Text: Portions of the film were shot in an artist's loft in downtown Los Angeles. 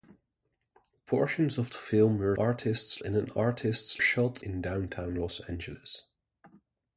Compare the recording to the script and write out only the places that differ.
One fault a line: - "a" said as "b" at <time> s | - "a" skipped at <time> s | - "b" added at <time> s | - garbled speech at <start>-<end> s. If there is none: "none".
- "shot" said as "artist's" at 2.3 s
- "loft" said as "shot" at 4.0 s